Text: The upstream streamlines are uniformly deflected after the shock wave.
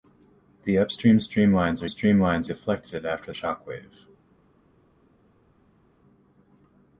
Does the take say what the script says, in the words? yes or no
no